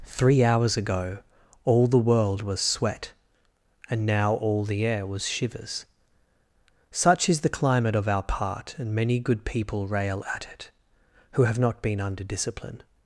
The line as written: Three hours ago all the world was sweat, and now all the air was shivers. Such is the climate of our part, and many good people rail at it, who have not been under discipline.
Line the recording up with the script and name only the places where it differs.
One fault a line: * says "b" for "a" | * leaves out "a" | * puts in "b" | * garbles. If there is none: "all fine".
all fine